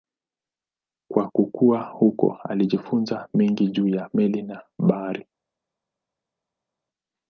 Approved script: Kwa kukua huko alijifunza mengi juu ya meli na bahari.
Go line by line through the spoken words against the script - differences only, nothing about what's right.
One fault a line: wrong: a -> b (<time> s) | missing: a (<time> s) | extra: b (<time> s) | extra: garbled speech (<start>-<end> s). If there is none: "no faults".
no faults